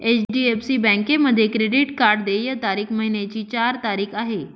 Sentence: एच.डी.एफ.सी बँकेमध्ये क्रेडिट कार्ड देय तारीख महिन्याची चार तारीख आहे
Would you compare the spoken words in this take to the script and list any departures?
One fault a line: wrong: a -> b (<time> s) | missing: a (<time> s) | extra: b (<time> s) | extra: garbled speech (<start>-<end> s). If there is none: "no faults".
no faults